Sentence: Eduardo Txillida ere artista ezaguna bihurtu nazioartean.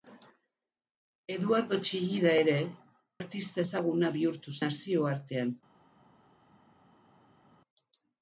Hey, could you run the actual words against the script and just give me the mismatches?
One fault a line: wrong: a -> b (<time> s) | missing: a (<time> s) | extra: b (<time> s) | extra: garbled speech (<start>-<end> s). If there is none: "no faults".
no faults